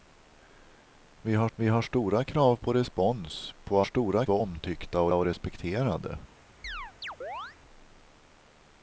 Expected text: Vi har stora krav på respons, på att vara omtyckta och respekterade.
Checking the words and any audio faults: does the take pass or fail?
fail